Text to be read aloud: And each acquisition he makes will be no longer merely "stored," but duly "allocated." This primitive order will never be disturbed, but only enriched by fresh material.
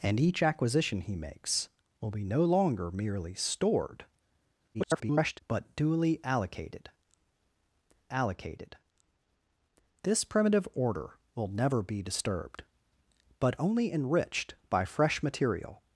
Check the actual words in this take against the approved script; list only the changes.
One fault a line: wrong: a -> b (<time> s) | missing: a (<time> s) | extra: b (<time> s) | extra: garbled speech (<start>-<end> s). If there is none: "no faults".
extra: garbled speech (4.7-5.4 s)
extra: allocated (8.1 s)